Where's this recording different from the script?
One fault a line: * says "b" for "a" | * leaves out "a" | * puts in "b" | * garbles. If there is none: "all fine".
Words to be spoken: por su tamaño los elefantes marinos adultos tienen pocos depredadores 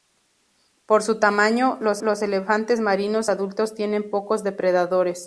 * puts in "los"